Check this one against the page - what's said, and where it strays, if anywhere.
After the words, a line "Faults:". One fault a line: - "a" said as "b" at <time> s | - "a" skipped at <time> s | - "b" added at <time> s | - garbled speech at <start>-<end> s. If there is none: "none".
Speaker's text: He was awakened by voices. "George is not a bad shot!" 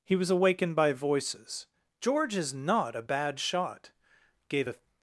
He was awakened by voices. "George is not a bad shot!" "Gave a
Faults:
- "Gave a" added at 4.5 s